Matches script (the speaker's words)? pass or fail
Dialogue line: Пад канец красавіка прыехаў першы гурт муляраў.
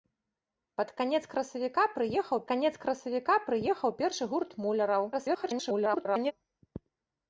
fail